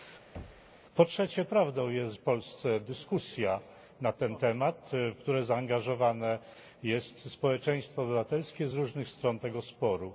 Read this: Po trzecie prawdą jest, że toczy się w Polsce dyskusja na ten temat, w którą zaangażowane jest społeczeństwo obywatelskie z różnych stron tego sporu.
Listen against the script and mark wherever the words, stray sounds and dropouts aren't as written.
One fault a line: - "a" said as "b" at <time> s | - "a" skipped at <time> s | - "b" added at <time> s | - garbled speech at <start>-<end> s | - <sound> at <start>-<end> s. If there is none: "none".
- thud at 0.3-0.7 s
- "że toczy się" skipped at 2.1 s